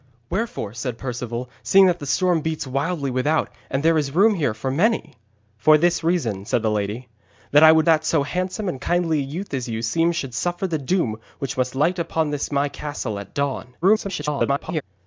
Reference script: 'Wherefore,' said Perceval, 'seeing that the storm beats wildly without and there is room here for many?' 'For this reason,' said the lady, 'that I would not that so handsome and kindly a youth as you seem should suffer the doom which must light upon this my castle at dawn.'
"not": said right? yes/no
no